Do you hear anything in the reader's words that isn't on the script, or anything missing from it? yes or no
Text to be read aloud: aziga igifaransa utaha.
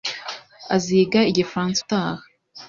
no